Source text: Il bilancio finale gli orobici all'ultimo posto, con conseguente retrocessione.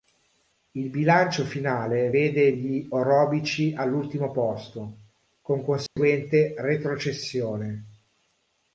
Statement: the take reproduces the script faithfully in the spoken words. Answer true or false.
false